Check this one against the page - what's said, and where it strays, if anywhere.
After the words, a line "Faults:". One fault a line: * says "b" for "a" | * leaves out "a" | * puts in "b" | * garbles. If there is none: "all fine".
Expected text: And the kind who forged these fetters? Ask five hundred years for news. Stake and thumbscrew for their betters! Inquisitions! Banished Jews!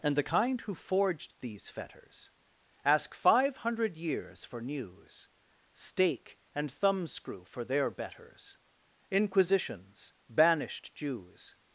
And the kind who forged these fetters? Ask five hundred years for news. Stake and thumbscrew for their betters! Inquisitions! Banished Jews!
Faults:
all fine